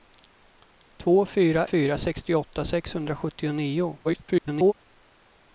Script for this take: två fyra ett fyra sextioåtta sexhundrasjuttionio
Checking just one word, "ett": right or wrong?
wrong